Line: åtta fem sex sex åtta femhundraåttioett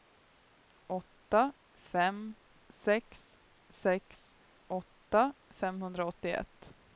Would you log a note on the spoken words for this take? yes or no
no